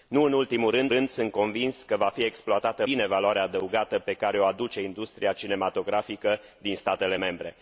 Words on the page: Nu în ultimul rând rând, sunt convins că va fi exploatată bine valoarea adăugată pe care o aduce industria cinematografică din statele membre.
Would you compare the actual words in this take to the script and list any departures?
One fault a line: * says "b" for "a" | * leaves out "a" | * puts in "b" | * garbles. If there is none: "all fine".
all fine